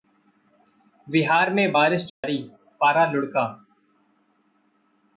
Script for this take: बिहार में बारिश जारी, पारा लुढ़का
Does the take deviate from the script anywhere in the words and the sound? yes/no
yes